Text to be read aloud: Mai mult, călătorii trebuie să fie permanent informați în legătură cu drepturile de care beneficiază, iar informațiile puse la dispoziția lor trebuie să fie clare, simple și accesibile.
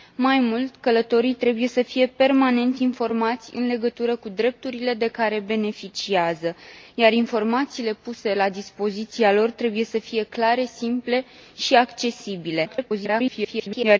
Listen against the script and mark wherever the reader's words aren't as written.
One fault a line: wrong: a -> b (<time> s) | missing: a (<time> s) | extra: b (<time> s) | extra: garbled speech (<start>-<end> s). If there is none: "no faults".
extra: garbled speech (12.6-14.0 s)